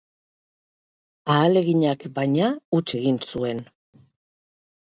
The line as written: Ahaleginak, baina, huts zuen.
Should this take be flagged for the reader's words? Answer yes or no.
yes